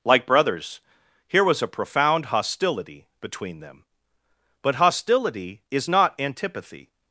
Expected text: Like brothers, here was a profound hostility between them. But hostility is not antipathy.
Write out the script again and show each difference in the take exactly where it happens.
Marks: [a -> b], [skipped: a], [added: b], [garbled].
Like brothers, here was a profound hostility between them. But hostility is not antipathy.